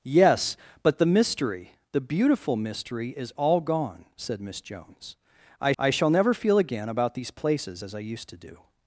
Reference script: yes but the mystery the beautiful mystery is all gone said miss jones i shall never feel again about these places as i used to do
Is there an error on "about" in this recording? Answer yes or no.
no